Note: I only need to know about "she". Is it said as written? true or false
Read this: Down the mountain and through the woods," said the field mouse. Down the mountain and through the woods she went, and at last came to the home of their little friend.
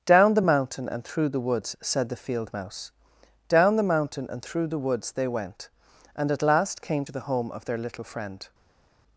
false